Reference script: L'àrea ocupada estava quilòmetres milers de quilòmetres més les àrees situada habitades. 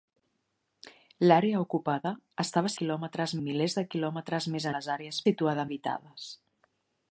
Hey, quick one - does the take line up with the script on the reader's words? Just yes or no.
yes